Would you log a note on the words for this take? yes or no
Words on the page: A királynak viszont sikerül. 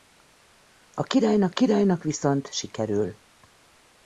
yes